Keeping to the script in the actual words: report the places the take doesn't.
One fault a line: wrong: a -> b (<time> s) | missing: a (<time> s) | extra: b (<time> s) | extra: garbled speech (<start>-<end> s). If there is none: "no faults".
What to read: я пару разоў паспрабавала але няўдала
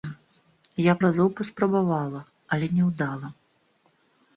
missing: пару (0.9 s)